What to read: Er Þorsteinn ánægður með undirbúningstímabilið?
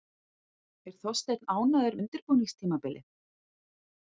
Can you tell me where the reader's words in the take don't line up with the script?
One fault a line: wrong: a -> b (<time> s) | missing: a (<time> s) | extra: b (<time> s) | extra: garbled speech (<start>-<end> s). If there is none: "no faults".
missing: með (2.0 s)